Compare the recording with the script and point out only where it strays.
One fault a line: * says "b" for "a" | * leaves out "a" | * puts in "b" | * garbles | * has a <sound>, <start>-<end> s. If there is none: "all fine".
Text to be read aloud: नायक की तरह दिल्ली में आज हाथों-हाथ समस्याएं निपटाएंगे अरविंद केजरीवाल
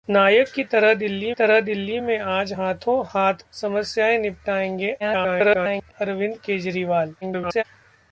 * puts in "तरह दिल्ली"
* garbles
* garbles